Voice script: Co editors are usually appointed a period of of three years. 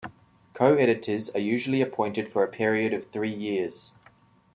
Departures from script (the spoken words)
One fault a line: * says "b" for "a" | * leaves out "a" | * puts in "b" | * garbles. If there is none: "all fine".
* puts in "for"
* leaves out "of"